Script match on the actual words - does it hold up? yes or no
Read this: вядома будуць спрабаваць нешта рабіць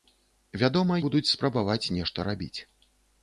yes